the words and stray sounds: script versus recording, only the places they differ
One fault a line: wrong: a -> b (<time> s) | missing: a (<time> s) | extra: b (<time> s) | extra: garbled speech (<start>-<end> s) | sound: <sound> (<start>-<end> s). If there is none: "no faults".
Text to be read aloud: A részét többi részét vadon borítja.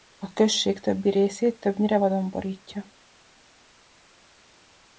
wrong: részét -> község (0.3 s)
extra: többnyire (1.6 s)